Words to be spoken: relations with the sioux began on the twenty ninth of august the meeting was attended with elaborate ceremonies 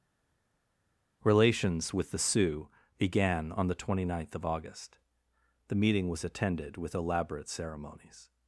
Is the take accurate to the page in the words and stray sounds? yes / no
yes